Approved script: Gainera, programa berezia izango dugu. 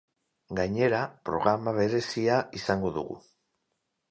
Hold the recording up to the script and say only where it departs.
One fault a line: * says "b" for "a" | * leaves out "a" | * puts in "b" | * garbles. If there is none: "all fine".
all fine